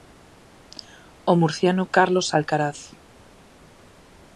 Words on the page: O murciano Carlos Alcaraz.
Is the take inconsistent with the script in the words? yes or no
no